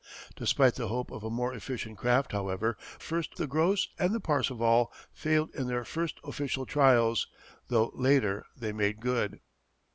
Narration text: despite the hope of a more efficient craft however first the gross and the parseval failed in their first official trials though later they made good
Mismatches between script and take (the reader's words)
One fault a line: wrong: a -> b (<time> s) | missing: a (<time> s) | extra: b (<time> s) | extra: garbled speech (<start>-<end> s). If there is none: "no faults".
no faults